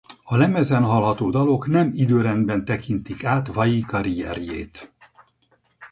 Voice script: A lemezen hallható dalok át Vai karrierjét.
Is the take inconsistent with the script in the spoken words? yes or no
yes